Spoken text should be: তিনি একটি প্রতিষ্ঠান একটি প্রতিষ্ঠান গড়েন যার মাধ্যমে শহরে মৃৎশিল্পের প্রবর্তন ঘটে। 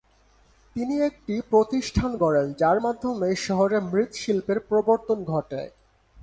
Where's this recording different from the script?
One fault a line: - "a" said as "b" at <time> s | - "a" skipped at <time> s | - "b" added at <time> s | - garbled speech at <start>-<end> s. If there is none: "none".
- "একটি প্রতিষ্ঠান" skipped at 2.1 s